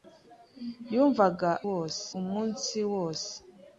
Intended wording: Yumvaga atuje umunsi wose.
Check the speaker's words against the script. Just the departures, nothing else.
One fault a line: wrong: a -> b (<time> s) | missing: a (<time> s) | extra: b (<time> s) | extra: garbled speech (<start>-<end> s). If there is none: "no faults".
wrong: atuje -> wose (1.7 s)